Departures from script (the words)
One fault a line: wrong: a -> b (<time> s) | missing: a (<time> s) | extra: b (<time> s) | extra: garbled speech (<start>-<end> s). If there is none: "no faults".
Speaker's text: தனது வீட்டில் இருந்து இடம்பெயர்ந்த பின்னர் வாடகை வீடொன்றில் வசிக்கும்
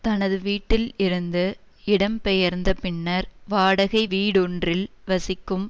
no faults